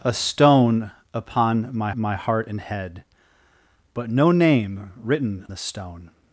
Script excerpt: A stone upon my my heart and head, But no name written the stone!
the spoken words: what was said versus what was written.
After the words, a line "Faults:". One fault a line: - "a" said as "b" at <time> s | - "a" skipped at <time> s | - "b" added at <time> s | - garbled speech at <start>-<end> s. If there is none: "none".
A stone upon my my heart and head, But no name written the stone!
Faults:
none